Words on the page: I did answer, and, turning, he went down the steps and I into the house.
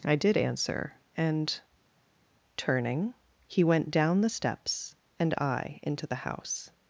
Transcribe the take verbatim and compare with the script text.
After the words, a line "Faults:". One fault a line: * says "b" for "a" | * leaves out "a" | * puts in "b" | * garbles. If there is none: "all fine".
I did answer, and, turning, he went down the steps and I into the house.
Faults:
all fine